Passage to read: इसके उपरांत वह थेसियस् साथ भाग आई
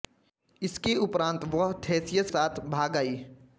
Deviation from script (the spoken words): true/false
false